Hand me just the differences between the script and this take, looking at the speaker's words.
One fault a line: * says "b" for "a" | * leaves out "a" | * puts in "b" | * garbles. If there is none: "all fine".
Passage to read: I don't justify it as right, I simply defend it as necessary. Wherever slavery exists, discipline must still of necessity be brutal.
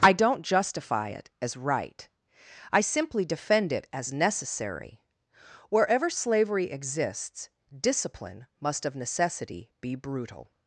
* leaves out "still"